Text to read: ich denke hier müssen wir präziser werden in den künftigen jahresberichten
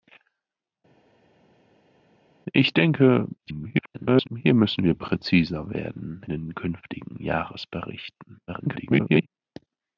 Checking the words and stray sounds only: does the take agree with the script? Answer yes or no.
no